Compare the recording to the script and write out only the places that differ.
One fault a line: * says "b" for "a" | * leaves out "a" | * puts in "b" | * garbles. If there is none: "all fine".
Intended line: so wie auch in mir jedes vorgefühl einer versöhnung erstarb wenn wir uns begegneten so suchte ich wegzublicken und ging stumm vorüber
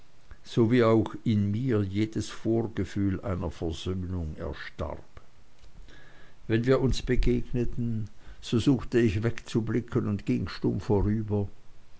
all fine